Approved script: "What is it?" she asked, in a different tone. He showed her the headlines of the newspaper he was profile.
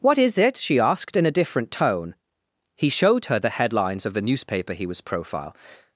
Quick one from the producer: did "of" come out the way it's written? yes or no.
yes